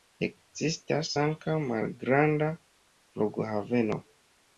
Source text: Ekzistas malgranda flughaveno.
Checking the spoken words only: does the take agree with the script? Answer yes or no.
no